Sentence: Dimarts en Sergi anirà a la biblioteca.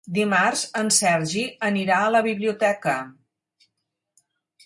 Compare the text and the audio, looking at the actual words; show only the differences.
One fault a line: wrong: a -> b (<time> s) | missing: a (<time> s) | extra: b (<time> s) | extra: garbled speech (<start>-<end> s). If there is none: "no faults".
no faults